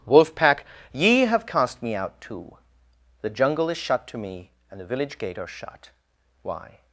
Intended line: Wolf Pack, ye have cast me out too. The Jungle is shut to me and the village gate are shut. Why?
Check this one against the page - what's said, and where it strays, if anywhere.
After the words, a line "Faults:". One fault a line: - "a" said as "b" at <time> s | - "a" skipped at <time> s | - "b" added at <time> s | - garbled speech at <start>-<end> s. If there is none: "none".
Wolf Pack, ye have cast me out too. The Jungle is shut to me and the village gate are shut. Why?
Faults:
none